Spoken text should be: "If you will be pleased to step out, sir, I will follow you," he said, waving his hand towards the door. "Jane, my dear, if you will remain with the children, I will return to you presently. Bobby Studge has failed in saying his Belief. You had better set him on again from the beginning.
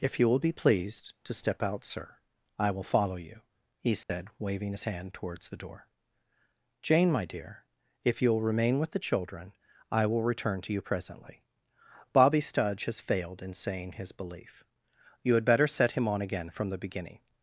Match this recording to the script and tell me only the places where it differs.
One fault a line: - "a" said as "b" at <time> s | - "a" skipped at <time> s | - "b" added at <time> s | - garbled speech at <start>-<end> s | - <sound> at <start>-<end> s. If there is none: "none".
- dropout at 4.0-4.1 s